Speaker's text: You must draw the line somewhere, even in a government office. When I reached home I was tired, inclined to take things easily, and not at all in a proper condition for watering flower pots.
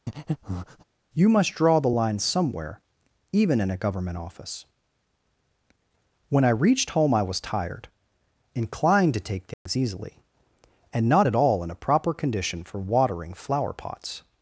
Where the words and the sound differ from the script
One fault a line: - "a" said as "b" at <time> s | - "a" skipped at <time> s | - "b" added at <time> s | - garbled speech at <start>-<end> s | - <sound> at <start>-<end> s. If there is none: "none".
- breath at 0.1-0.8 s
- dropout at 9.5-9.7 s